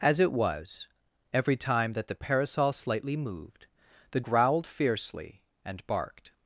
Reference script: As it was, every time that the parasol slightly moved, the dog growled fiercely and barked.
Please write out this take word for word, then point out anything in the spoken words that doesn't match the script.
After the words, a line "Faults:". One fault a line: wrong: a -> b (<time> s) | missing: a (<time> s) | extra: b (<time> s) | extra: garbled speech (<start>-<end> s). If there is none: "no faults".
As it was, every time that the parasol slightly moved, the growled fiercely and barked.
Faults:
missing: dog (4.2 s)